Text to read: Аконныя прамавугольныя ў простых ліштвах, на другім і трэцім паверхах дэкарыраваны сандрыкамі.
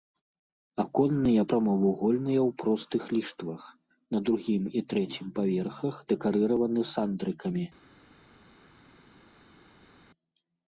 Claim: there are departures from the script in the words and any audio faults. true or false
false